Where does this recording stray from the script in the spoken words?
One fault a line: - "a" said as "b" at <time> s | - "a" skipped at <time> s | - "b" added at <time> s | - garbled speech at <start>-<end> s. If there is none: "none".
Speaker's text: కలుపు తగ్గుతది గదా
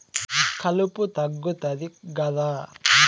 none